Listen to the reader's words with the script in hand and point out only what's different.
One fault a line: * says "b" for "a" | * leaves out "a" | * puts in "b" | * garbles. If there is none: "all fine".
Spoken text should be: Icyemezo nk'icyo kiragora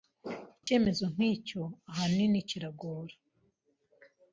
* puts in "ahanini"